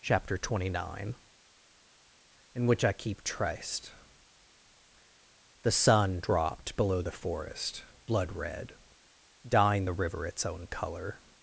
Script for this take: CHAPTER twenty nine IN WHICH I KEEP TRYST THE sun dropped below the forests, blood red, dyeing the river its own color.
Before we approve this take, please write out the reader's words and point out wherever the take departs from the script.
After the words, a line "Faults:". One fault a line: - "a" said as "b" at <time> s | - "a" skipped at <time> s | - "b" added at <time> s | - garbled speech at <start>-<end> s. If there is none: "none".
CHAPTER twenty nine IN WHICH I KEEP TRYST THE sun dropped below the forest, blood red, dyeing the river its own color.
Faults:
- "forests" said as "forest" at 7.1 s